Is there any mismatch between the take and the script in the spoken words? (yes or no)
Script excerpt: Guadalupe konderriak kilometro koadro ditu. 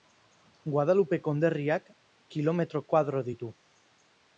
no